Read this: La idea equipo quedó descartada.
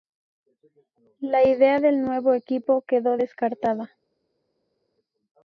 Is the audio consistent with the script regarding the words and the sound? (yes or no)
no